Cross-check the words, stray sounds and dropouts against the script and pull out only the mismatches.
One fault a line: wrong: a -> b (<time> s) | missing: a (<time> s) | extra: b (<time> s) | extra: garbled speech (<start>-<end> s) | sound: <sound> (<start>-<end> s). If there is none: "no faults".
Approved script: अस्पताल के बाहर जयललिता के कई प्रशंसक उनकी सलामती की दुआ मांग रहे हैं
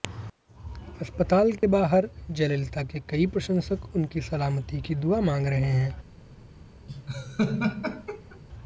sound: dropout (1.6-1.6 s)
sound: laugh (6.9-8.4 s)